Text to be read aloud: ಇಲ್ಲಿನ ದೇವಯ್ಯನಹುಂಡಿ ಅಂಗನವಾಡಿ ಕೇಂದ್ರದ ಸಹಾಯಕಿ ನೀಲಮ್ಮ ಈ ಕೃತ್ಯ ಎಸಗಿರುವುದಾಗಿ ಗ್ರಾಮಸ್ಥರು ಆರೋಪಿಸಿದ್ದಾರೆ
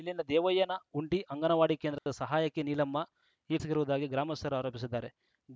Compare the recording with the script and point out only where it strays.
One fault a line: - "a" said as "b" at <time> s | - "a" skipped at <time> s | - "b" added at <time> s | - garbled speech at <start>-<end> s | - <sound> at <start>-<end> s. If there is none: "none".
- dropout at 2.0-2.1 s
- "ಕೃತ್ಯ" skipped at 3.6 s